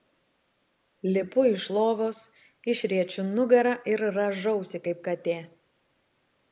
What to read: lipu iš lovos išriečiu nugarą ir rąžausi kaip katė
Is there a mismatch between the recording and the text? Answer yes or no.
no